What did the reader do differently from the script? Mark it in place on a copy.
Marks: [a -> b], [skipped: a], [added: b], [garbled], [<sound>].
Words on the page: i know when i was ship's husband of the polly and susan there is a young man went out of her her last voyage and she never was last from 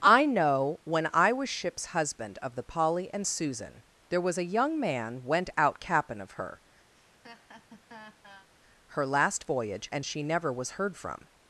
i know when i was ship's husband of the polly and susan there [is -> was] a young man went out [added: cap'n] of her [laugh] her last voyage and she never was [last -> heard] from